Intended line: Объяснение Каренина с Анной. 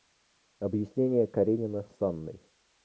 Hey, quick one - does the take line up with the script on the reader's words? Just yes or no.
yes